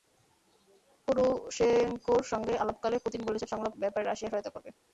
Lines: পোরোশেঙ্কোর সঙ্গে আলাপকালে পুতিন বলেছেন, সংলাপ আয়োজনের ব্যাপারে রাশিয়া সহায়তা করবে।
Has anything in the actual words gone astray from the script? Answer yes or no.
yes